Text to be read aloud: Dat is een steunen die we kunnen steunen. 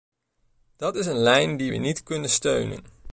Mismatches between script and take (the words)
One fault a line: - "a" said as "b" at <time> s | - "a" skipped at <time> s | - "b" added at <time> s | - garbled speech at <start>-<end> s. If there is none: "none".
- "steunen" said as "lijn" at 1.2 s
- "niet" added at 1.7 s